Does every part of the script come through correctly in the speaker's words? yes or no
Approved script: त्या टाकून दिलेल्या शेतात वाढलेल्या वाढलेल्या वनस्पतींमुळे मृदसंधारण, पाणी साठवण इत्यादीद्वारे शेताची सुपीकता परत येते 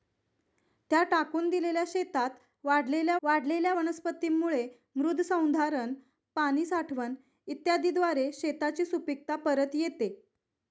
yes